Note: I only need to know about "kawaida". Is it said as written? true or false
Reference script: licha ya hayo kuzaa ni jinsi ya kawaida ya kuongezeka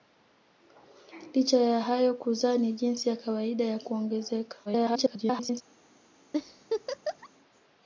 true